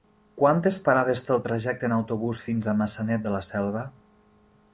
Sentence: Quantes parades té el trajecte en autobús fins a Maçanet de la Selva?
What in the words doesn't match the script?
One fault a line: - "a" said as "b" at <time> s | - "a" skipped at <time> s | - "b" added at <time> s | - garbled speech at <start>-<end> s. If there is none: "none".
none